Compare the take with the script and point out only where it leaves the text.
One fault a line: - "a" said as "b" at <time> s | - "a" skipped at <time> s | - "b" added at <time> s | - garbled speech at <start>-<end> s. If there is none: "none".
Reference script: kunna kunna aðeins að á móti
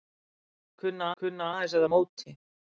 none